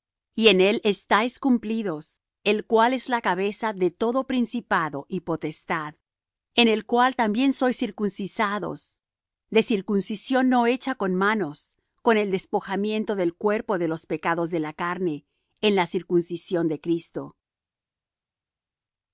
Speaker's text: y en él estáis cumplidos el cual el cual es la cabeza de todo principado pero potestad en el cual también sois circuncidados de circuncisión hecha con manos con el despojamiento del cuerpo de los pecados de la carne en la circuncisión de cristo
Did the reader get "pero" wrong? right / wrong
wrong